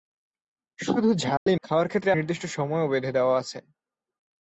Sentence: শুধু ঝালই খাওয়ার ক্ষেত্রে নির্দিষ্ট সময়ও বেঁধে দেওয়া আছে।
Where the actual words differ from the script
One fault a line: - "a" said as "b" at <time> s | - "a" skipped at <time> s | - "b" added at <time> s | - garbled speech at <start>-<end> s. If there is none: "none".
none